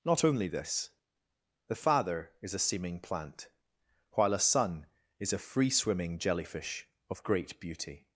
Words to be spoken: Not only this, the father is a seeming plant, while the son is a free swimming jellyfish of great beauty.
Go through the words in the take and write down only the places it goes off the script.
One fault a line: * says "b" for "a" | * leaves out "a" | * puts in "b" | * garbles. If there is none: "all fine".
* says "a" for "the"